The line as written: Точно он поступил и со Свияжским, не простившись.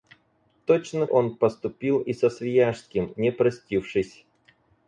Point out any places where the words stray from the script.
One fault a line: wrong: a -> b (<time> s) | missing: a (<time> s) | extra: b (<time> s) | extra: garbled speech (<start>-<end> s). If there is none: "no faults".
no faults